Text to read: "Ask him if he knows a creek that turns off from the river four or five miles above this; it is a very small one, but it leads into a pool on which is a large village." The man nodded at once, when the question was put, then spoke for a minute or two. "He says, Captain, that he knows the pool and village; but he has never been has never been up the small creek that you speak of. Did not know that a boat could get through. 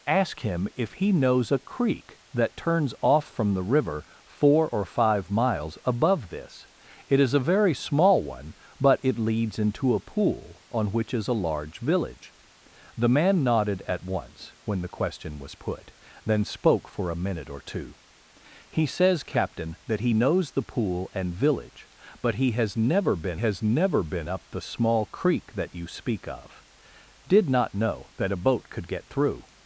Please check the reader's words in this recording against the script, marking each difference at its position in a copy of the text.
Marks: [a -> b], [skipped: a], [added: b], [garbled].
"Ask him if he knows a creek that turns off from the river four or five miles above this; it is a very small one, but it leads into a pool on which is a large village." The man nodded at once, when the question was put, then spoke for a minute or two. "He says, Captain, that he knows the pool and village; but he has never been has never been up the small creek that you speak of. Did not know that a boat could get through.